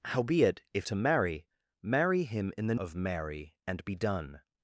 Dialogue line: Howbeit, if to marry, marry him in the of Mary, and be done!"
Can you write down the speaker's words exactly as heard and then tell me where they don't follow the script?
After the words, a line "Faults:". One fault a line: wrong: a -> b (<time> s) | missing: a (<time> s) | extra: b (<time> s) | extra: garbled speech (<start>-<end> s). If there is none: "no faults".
Howbeit, if to marry, marry him in the of Mary, and be done!"
Faults:
no faults